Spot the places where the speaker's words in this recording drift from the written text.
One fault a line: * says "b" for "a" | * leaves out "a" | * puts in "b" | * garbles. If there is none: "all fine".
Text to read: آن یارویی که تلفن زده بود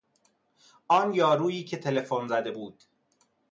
all fine